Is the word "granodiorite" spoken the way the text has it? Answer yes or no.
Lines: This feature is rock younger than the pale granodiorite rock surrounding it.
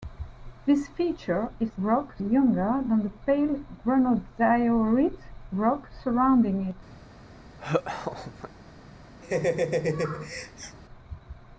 yes